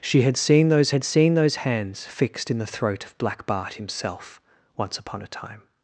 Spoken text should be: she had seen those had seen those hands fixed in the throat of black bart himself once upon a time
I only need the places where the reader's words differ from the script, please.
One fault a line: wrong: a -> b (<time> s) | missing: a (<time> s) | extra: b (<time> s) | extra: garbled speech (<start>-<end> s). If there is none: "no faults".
no faults